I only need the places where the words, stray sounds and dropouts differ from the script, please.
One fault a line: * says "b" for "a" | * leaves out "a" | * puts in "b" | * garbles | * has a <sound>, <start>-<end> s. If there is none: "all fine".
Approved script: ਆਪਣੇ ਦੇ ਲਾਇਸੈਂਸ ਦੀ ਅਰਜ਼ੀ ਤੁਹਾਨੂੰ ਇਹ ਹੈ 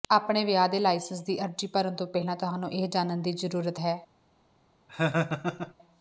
* puts in "ਵਿਆਹ"
* puts in "ਭਰਨ ਤੋਂ ਪਹਿਲਾਂ"
* puts in "ਜਾਣਨ ਦੀ ਜ਼ਰੂਰਤ"
* has a laugh, 4.9-5.7 s